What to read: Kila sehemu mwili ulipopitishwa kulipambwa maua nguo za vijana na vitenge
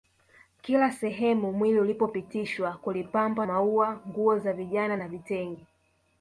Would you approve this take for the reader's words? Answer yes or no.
yes